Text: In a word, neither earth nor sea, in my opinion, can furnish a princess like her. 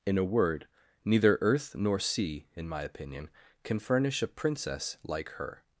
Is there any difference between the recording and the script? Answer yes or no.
no